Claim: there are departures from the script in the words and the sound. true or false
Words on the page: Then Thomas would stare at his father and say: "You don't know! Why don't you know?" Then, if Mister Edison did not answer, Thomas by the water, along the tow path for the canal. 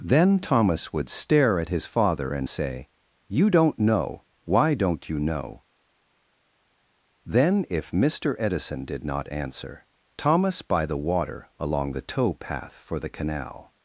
false